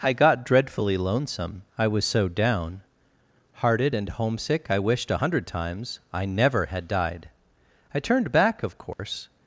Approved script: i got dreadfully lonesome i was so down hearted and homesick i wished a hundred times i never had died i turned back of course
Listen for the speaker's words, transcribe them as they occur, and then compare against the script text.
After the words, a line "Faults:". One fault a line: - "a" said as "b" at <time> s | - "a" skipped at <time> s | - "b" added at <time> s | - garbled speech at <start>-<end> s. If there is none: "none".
i got dreadfully lonesome i was so down hearted and homesick i wished a hundred times i never had died i turned back of course
Faults:
none